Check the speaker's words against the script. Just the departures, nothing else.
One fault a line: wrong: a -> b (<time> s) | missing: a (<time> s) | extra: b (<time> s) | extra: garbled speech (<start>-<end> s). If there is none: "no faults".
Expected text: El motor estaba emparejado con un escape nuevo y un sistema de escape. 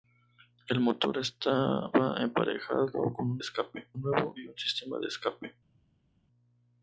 no faults